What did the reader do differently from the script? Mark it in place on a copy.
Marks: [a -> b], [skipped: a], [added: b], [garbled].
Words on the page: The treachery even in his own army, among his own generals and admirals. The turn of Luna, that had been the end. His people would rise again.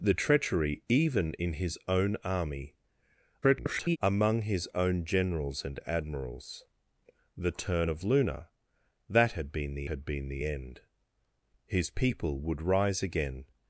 The treachery even in his own army, [garbled] among his own generals and admirals. The turn of Luna, that had been the [added: had been the] end. His people would rise again.